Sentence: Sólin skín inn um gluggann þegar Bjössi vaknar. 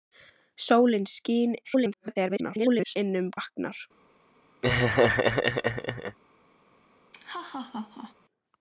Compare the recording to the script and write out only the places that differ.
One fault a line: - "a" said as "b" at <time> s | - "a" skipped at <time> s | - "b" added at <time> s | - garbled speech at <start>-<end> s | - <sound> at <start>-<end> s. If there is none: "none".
- garbled speech at 1.6-3.0 s
- "gluggann þegar Bjössi" skipped at 3.3 s
- laugh at 4.6-6.2 s
- laugh at 7.1-8.1 s